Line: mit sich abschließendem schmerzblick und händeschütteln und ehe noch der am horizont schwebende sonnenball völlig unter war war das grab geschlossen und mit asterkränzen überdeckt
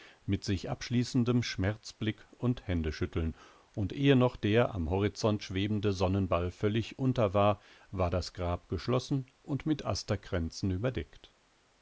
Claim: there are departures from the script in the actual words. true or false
false